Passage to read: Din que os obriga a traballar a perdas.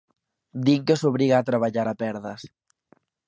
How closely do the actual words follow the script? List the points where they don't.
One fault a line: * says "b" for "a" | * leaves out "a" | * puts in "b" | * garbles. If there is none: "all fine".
all fine